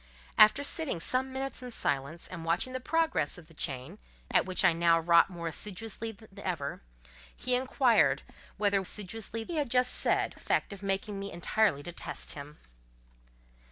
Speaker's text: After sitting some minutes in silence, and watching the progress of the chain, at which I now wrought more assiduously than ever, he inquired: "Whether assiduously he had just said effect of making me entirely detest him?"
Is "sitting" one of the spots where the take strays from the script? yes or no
no